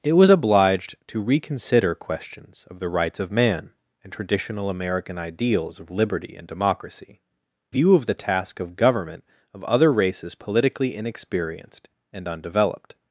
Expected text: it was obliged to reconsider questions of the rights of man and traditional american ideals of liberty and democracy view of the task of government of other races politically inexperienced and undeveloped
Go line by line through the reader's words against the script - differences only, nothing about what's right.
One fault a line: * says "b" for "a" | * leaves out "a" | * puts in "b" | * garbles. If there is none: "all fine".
all fine